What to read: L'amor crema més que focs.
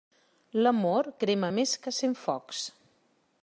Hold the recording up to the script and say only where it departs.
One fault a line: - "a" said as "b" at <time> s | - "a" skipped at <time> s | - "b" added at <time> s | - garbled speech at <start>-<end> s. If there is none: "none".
- "cent" added at 2.0 s